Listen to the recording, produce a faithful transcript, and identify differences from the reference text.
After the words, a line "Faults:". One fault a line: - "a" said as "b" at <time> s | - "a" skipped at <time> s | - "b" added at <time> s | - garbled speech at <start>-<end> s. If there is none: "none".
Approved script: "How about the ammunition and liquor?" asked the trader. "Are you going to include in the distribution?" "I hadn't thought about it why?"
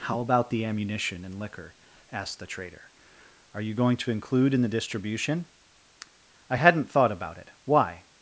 "How about the ammunition and liquor?" asked the trader. "Are you going to include in the distribution?" "I hadn't thought about it why?"
Faults:
none